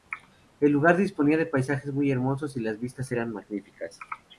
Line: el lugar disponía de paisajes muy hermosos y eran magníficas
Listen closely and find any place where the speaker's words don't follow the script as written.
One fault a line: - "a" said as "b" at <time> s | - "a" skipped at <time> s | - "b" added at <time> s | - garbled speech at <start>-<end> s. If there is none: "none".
- "las vistas" added at 2.6 s